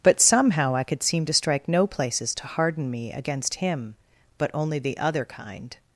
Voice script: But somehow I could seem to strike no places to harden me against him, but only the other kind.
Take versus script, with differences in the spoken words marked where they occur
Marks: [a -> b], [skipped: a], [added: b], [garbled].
But somehow I could seem to strike no places to harden me against him, but only the other kind.